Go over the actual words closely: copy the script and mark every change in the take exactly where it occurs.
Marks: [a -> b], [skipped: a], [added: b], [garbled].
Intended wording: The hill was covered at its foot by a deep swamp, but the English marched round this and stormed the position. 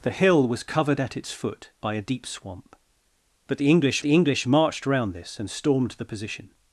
The hill was covered at its foot by a deep swamp, but the English [added: the English] marched round this and stormed the position.